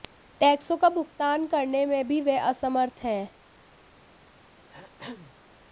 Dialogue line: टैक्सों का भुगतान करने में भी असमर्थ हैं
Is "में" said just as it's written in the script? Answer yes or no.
yes